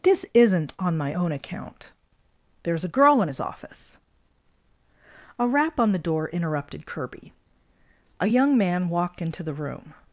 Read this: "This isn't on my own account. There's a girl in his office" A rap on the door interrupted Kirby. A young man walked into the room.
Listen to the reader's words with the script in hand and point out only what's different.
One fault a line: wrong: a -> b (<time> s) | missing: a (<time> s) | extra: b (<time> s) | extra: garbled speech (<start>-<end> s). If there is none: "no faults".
no faults